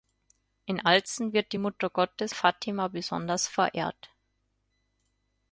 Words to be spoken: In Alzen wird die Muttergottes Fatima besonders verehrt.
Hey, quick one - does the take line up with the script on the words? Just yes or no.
yes